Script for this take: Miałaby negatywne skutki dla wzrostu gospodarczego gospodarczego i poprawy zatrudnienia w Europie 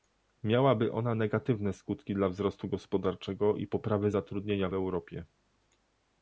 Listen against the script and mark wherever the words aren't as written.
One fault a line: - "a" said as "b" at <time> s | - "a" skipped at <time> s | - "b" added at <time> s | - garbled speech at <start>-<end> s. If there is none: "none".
- "ona" added at 0.9 s
- "gospodarczego" skipped at 3.5 s